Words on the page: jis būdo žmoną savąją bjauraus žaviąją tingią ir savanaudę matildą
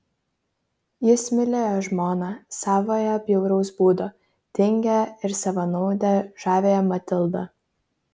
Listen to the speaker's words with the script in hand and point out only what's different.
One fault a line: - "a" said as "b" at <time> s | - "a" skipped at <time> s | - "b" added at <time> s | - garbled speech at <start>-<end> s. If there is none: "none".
- "būdo" said as "mylėjo" at 1.4 s
- "žaviąją" said as "būdo" at 3.8 s
- "žaviąją" added at 6.5 s